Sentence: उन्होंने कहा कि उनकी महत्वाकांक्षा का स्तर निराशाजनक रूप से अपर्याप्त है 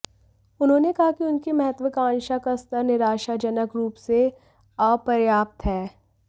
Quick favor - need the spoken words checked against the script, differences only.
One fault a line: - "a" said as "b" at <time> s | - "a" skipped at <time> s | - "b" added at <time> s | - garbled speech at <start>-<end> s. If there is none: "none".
none